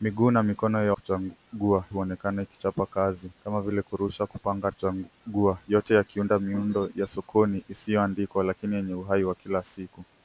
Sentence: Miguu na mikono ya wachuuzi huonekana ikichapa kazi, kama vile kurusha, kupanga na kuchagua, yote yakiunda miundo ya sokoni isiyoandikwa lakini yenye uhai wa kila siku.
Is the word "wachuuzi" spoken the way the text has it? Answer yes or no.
no